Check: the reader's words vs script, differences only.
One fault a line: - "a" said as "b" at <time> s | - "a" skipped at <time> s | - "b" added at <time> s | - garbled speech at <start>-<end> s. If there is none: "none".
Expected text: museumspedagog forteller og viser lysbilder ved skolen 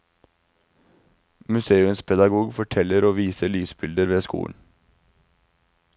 none